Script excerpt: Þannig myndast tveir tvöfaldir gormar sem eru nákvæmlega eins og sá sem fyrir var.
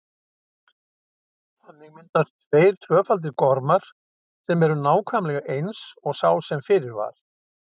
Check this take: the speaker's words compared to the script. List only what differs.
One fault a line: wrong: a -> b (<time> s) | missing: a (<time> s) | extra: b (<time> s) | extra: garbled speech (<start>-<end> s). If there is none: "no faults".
no faults